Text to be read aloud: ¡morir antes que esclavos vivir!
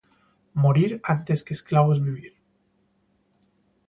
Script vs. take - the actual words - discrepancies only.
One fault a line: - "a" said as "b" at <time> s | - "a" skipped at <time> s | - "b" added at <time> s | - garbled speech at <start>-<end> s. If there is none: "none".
none